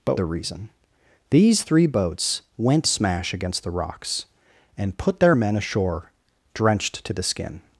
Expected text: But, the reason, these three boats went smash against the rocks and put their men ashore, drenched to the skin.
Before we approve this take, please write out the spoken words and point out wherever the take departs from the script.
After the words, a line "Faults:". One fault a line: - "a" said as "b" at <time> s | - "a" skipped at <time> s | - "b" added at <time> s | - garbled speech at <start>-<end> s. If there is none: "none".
But, the reason, these three boats went smash against the rocks and put their men ashore, drenched to the skin.
Faults:
none